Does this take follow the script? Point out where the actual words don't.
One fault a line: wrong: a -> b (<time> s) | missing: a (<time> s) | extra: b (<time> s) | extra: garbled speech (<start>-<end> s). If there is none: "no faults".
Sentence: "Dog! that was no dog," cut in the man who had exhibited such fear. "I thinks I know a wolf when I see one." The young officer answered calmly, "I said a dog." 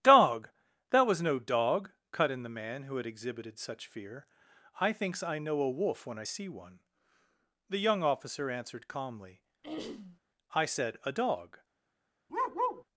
no faults